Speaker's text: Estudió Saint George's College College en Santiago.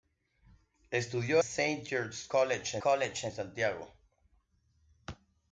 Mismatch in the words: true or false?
false